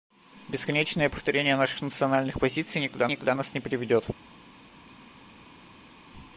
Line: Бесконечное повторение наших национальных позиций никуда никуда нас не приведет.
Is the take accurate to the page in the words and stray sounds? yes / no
yes